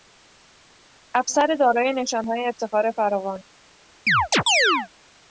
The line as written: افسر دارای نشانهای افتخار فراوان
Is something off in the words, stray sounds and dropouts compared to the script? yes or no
yes